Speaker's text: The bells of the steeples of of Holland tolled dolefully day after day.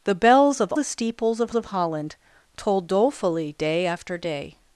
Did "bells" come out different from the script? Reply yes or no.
no